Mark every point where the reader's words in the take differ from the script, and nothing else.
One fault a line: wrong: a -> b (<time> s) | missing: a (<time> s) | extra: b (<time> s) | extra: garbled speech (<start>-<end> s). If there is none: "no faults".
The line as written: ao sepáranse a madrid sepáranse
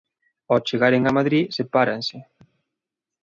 wrong: sepáranse -> chegaren (0.7 s)